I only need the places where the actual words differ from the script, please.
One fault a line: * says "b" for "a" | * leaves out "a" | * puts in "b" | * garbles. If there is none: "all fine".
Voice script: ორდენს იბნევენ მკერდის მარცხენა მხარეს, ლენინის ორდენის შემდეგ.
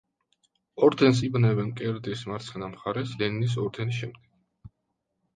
all fine